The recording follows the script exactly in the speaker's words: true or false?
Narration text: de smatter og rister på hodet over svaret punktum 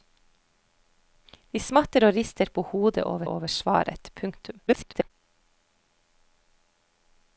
false